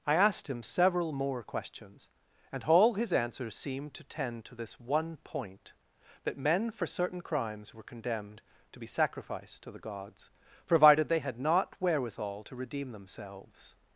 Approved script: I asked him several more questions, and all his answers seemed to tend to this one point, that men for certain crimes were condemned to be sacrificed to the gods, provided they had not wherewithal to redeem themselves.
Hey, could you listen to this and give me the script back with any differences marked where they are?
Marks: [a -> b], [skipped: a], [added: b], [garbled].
I asked him several more questions, and all his answers seemed to tend to this one point, that men for certain crimes were condemned to be sacrificed to the gods, provided they had not wherewithal to redeem themselves.